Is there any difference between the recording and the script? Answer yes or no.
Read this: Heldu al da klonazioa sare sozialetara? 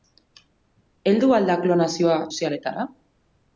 yes